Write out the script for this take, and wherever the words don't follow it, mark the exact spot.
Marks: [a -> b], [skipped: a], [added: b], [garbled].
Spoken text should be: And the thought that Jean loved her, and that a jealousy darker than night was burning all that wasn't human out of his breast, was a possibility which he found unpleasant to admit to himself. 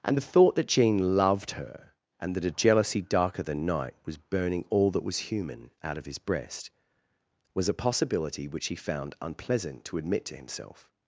And the thought that Jean loved her, and that a jealousy darker than night was burning all that [wasn't -> was] human out of his breast, was a possibility which he found unpleasant to admit to himself.